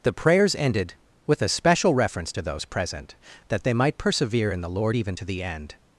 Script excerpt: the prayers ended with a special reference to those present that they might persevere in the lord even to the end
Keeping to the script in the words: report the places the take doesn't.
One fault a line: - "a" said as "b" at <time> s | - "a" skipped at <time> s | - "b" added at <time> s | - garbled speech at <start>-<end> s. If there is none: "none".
none